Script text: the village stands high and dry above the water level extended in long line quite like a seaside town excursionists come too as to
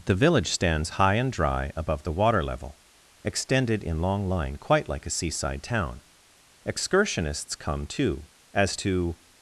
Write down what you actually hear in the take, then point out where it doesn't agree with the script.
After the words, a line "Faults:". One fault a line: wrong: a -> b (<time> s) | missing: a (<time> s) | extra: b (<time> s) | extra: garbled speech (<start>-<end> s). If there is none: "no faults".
the village stands high and dry above the water level extended in long line quite like a seaside town excursionists come too as to
Faults:
no faults